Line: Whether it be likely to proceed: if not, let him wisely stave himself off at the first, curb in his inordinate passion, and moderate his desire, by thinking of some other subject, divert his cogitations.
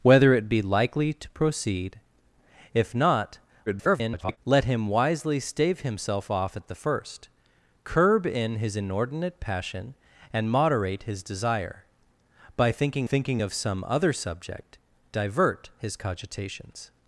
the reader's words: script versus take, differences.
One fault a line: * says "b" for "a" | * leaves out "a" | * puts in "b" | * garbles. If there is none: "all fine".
* garbles
* puts in "thinking"